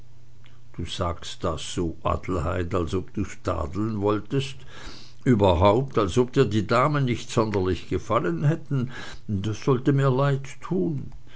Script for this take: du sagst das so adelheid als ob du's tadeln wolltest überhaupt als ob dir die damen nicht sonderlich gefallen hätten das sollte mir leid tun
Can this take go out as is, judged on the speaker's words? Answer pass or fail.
pass